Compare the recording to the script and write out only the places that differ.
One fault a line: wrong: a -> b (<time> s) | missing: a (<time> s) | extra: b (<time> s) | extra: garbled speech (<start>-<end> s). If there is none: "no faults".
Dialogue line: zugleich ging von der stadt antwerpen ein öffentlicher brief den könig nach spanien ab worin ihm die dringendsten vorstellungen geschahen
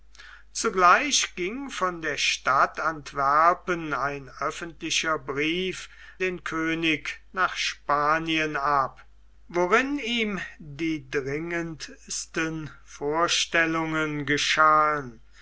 no faults